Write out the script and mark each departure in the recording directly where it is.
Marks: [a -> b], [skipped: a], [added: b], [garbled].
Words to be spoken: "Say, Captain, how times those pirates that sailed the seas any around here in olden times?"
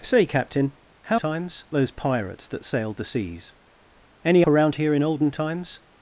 "Say, Captain, how times those pirates that sailed the seas any around here in olden times?"